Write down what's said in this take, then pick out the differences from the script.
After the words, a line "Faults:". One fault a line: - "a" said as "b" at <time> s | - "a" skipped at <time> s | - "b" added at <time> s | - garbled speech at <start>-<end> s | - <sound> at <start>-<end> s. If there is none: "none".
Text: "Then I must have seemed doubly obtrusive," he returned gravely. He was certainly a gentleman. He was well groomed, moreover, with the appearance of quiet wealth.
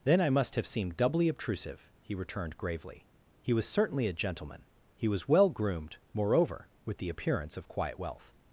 "Then I must have seemed doubly obtrusive," he returned gravely. He was certainly a gentleman. He was well groomed, moreover, with the appearance of quiet wealth.
Faults:
none